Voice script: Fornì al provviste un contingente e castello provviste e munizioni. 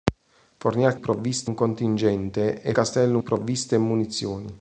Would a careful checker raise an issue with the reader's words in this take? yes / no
no